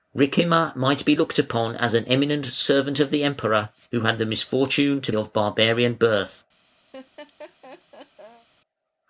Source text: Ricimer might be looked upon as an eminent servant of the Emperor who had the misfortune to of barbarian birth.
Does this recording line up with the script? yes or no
yes